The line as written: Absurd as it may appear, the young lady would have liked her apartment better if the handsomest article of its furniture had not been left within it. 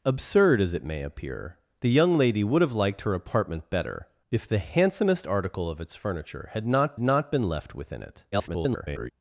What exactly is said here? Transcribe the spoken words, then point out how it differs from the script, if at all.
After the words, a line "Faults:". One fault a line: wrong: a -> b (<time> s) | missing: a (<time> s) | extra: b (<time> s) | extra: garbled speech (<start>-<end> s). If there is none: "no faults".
Absurd as it may appear, the young lady would have liked her apartment better if the handsomest article of its furniture had not not been left within it. [garbled]
Faults:
extra: not (7.0 s)
extra: garbled speech (8.3-9.1 s)